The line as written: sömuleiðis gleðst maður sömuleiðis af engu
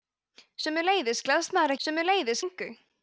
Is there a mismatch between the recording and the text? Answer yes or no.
no